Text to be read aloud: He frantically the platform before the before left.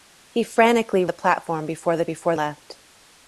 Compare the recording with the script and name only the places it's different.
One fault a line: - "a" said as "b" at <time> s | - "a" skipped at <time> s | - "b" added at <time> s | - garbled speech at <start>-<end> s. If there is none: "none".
none